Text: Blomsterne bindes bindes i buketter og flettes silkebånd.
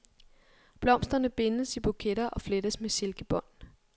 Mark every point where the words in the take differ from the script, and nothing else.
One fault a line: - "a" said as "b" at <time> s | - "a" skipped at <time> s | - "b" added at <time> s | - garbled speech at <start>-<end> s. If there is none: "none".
- "bindes" skipped at 1.8 s
- "med" added at 2.8 s